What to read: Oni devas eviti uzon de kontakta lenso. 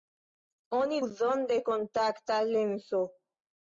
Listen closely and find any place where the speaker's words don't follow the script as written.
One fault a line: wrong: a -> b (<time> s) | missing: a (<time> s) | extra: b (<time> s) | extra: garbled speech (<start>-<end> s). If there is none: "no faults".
missing: devas eviti (1.0 s)